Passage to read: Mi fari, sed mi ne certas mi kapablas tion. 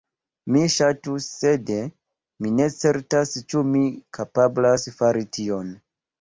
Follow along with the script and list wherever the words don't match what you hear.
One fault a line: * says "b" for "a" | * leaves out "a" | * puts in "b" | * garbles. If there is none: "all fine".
* says "ŝatus" for "fari"
* puts in "ĉu"
* puts in "fari"